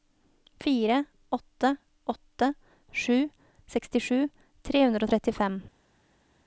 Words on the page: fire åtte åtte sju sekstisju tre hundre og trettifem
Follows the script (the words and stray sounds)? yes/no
yes